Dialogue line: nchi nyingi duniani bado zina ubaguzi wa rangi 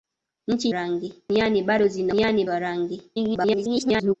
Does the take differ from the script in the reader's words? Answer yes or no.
yes